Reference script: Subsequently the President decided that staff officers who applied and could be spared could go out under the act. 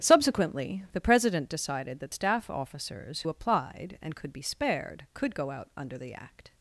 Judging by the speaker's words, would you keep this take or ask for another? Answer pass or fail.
fail